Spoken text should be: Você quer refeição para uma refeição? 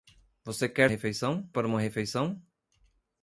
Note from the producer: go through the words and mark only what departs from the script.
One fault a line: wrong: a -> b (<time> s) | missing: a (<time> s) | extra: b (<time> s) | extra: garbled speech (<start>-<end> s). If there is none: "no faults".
no faults